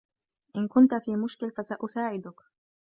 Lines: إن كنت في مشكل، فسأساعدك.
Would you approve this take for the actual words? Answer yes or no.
yes